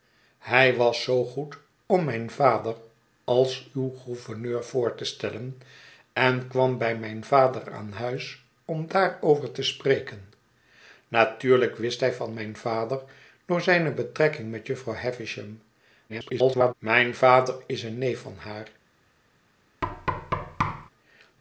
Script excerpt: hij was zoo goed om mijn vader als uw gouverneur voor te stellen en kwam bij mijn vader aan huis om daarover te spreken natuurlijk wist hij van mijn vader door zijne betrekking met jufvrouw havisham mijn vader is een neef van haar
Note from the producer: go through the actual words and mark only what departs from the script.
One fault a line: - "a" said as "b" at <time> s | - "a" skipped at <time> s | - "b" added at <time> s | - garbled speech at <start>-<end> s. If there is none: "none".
- garbled speech at 16.1-16.7 s